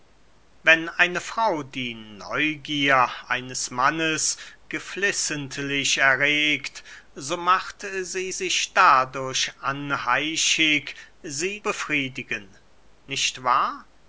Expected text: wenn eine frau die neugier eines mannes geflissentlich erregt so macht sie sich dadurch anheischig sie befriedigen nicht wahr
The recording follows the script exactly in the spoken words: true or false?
true